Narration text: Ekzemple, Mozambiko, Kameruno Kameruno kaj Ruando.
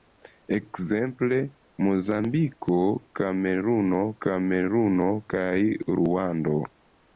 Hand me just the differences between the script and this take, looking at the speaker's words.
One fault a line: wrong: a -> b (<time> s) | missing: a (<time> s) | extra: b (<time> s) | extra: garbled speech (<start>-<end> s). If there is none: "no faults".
no faults